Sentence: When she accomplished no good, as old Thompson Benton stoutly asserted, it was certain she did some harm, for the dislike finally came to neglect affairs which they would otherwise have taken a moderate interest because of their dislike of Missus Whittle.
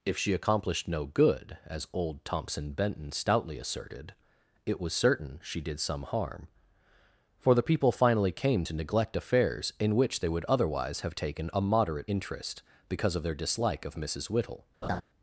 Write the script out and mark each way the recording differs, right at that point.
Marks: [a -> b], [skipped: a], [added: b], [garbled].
[When -> If] she accomplished no good, as old Thompson Benton stoutly asserted, it was certain she did some harm, for the [dislike -> people] finally came to neglect affairs [added: in] which they would otherwise have taken a moderate interest because of their dislike of Missus Whittle.